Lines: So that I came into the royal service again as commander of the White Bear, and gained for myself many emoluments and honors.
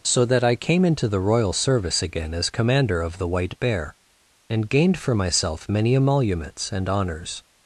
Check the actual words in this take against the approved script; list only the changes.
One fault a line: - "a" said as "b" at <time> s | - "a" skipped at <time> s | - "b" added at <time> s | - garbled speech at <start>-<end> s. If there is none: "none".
none